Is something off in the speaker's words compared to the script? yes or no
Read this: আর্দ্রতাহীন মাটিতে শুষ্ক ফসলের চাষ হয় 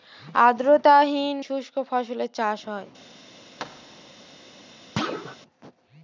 yes